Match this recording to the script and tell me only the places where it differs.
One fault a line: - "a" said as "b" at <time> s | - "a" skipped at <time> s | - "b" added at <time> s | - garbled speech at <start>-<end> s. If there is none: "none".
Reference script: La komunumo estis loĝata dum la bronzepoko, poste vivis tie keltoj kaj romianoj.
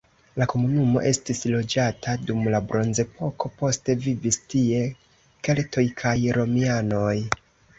none